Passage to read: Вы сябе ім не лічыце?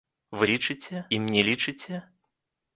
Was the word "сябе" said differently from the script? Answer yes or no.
yes